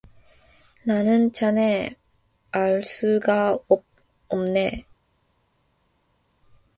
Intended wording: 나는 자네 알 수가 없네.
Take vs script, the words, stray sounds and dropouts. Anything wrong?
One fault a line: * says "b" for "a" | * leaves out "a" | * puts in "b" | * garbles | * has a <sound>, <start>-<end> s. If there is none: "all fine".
all fine